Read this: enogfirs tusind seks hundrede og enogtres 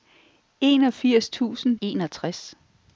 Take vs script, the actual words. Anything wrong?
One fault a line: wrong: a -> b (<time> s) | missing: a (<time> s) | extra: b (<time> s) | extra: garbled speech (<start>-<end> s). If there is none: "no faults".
missing: seks hundrede og (1.8 s)